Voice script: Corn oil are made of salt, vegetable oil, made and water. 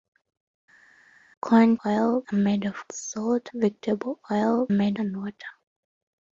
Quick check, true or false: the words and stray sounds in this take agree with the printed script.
true